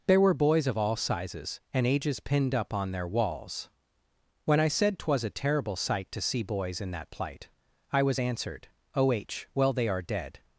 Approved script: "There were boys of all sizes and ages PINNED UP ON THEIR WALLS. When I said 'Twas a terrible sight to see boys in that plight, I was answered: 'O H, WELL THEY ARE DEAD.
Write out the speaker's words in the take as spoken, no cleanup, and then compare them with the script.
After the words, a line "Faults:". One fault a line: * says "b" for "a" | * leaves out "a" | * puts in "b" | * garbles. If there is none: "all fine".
"There were boys of all sizes and ages PINNED UP ON THEIR WALLS. When I said 'Twas a terrible sight to see boys in that plight, I was answered: 'O H, WELL THEY ARE DEAD.
Faults:
all fine